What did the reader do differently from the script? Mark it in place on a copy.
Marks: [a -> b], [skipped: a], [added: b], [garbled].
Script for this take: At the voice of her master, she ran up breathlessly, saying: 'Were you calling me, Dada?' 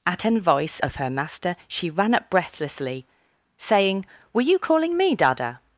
At [the -> an] voice of her master, she ran up breathlessly, saying: 'Were you calling me, Dada?'